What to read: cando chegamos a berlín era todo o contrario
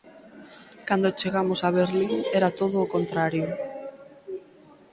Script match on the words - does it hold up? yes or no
yes